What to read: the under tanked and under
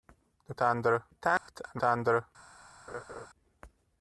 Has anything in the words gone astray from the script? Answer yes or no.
no